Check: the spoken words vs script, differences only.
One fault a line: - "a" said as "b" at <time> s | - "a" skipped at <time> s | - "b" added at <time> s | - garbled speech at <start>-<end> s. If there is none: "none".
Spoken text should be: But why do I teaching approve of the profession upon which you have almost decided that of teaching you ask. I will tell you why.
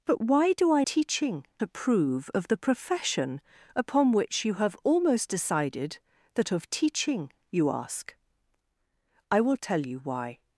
none